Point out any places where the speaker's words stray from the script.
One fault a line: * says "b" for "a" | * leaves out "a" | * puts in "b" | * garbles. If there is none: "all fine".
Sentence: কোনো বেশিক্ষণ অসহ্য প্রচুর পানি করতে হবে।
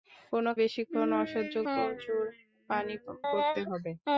all fine